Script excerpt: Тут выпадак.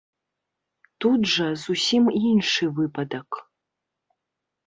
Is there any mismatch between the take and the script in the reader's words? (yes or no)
yes